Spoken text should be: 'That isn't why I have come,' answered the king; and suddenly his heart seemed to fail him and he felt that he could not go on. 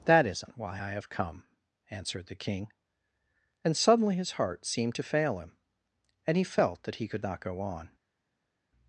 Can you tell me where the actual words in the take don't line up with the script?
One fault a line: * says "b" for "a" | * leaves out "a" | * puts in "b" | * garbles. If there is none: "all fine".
all fine